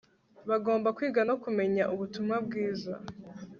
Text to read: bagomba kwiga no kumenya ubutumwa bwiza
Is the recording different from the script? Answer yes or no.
no